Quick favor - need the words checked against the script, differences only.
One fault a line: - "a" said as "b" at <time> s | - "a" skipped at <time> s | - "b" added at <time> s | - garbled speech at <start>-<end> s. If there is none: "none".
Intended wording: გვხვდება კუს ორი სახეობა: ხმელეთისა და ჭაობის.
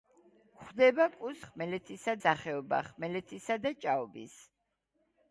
- "ორი" said as "ხმელეთისა" at 1.5 s